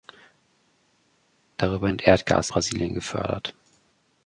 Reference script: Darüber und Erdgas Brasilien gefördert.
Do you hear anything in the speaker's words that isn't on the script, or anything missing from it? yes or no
no